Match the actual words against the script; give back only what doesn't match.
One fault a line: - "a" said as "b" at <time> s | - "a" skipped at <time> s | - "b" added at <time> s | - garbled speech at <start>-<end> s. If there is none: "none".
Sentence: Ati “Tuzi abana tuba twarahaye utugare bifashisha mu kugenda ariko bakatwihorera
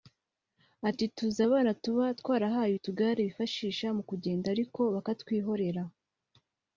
none